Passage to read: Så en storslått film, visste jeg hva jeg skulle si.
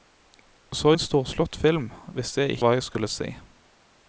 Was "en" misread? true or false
false